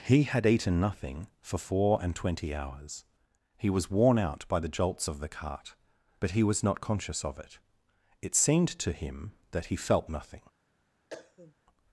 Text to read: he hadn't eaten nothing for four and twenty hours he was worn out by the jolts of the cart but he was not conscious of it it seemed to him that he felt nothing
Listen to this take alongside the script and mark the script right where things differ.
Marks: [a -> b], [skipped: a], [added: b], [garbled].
he [hadn't -> had] eaten nothing for four and twenty hours he was worn out by the jolts of the cart but he was not conscious of it it seemed to him that he felt nothing